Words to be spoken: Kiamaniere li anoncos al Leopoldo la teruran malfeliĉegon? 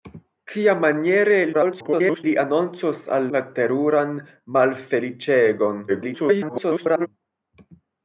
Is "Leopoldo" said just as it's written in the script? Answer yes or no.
no